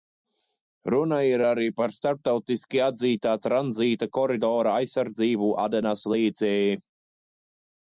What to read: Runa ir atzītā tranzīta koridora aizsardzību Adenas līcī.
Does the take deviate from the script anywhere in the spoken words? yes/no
yes